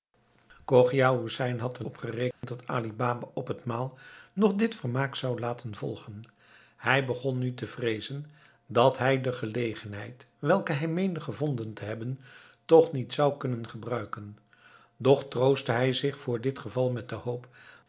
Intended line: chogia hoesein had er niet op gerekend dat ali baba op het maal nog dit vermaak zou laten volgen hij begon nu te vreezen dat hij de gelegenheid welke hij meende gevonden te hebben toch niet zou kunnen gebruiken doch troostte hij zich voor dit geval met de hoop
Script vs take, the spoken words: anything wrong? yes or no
yes